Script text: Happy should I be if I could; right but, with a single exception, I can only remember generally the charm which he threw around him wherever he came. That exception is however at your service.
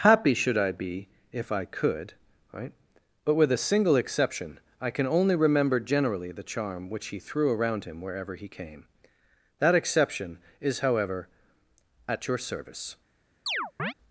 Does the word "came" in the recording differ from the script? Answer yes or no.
no